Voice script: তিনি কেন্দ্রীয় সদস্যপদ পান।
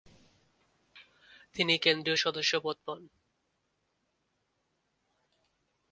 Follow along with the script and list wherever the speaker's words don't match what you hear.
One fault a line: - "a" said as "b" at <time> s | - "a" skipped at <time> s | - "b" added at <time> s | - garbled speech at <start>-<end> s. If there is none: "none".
none